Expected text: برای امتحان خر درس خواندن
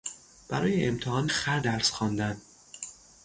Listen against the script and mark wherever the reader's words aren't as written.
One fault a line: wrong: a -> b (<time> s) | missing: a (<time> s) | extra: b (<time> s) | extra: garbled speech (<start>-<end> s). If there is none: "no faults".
no faults